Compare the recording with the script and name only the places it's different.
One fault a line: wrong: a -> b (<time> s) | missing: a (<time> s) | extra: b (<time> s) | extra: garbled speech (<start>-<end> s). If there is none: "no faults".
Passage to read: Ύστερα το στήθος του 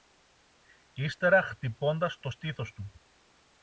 extra: χτυπώντας (1.4 s)